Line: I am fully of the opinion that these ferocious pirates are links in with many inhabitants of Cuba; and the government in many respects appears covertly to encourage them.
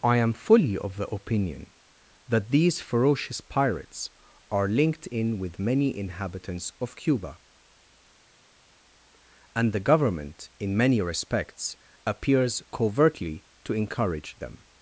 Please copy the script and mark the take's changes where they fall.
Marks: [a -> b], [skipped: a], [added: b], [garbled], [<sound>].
I am fully of the opinion that these ferocious pirates are [links -> linked] in with many inhabitants of Cuba; and the government in many respects appears covertly to encourage them.